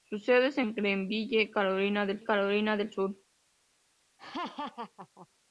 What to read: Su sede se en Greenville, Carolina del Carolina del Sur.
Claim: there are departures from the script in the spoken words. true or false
false